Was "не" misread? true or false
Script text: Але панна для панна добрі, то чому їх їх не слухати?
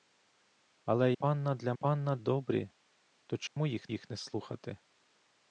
false